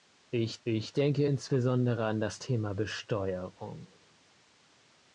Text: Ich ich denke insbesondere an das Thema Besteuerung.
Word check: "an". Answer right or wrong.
right